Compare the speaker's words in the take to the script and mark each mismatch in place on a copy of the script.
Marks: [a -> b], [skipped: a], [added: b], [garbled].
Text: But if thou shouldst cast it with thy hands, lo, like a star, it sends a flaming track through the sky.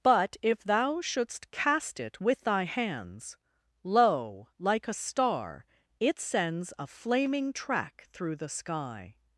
But if thou shouldst cast it with thy hands, lo, like a star, it sends a flaming track through the sky.